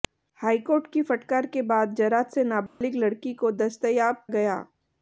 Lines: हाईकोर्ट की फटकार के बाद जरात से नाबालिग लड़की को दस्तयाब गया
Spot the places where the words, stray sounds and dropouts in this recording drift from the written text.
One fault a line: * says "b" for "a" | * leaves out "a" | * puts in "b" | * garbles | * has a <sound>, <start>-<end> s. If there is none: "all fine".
* has a dropout, 2.7-2.8 s